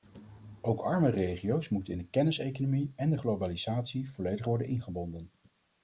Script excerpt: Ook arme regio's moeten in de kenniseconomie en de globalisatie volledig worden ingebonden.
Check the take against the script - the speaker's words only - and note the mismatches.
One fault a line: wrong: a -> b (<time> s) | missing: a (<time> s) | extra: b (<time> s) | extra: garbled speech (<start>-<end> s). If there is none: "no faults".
no faults